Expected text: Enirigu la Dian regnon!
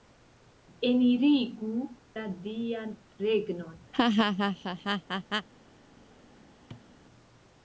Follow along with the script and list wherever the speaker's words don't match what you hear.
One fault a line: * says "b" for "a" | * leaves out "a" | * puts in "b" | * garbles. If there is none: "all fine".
all fine